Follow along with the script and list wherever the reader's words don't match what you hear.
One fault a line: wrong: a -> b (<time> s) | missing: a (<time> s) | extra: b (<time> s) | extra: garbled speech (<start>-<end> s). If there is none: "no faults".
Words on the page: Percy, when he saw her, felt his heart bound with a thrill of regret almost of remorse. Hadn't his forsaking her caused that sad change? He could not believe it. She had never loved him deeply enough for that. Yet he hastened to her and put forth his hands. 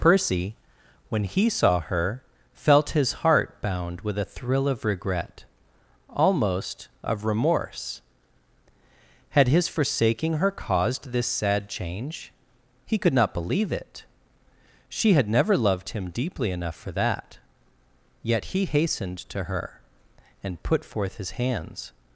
wrong: Hadn't -> Had (9.3 s)
wrong: that -> this (11.1 s)